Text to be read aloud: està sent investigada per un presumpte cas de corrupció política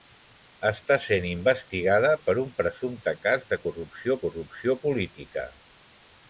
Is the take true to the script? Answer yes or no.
no